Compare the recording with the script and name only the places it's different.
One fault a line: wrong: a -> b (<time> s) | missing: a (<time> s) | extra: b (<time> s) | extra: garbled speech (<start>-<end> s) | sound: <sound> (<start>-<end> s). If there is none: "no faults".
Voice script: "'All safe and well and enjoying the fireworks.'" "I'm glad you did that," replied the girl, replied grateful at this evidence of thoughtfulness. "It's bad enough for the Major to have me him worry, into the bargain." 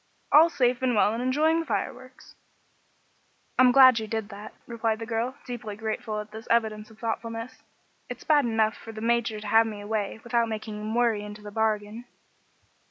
wrong: replied -> deeply (5.5 s)
extra: away without making (9.8 s)